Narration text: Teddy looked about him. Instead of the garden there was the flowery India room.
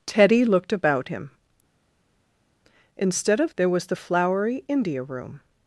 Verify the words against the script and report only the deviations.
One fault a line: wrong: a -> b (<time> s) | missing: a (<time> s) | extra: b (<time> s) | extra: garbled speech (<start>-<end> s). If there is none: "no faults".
missing: the garden (3.5 s)